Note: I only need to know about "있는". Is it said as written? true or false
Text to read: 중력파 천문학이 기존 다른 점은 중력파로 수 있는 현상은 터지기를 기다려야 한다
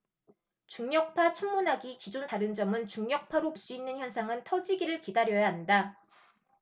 true